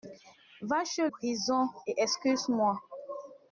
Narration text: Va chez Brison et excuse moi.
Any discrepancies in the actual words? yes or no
no